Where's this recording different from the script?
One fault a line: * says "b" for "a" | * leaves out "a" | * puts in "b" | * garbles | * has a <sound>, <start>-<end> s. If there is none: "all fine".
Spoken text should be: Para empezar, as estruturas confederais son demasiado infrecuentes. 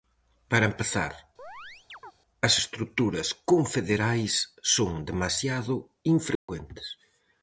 * has a chirp, 1.4-2.1 s
* has a dropout, 6.4-6.5 s